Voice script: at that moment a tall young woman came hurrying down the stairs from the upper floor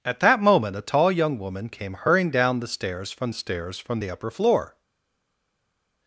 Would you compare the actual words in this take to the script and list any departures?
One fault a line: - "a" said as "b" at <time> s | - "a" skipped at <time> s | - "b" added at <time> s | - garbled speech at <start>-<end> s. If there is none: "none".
- "stairs from" added at 3.3 s